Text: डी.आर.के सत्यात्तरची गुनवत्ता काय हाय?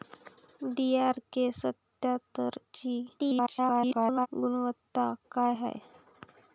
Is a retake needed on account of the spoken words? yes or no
yes